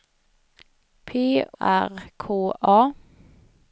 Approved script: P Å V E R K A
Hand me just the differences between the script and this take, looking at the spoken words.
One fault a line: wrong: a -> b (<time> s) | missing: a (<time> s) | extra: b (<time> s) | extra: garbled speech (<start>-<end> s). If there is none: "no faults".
missing: Å V E (1.4 s)